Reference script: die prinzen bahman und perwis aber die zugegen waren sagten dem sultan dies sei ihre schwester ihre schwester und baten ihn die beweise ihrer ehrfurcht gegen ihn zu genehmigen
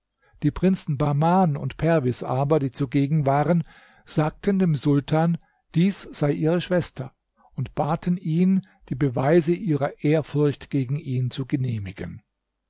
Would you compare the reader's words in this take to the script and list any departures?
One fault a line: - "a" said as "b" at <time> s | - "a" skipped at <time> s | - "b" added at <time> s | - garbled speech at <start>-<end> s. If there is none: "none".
- "ihre schwester" skipped at 7.1 s